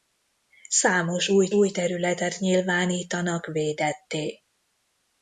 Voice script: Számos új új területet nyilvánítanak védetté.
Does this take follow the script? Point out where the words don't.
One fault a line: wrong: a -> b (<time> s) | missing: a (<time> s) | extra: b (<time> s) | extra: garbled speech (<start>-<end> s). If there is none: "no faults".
no faults